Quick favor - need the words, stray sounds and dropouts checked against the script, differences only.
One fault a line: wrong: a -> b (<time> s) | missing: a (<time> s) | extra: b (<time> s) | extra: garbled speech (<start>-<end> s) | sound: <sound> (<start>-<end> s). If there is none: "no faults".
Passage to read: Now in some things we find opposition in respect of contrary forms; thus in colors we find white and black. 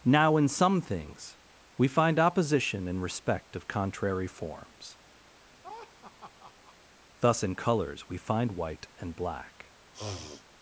sound: laugh (5.4-6.8 s)
sound: sniff (9.9-10.4 s)